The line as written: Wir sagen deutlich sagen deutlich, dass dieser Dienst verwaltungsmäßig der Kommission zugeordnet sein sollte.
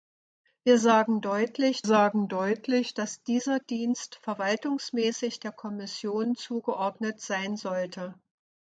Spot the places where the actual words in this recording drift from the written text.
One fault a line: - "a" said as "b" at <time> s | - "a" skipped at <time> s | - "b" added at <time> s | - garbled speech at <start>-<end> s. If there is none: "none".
none